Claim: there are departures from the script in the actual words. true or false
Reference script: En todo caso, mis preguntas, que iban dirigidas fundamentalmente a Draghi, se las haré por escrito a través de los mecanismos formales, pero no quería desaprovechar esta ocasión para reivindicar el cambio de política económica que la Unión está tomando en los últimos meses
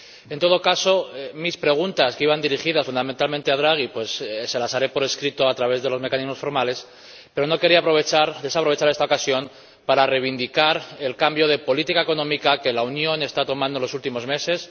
false